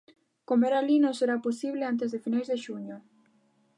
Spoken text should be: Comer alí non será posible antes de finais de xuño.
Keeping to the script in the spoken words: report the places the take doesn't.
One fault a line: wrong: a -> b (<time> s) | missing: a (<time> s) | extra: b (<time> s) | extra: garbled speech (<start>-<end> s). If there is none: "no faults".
no faults